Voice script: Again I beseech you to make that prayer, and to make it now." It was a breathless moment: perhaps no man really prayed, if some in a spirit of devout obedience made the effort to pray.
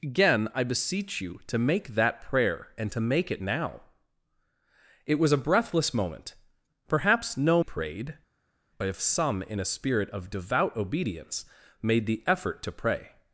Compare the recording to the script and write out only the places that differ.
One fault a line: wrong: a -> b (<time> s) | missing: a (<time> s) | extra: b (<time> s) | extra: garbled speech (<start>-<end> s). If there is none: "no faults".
missing: man really (7.6 s)